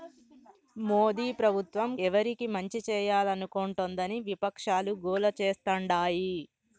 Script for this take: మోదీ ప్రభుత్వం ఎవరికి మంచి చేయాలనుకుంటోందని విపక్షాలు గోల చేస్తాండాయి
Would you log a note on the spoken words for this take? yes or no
no